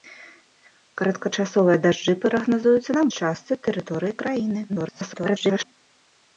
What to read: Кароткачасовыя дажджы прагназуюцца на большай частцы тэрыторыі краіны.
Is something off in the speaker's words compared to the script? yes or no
yes